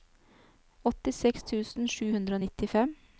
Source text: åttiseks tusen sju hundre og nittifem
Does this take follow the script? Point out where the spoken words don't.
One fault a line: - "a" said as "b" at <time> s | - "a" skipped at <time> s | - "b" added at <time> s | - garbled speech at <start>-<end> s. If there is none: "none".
none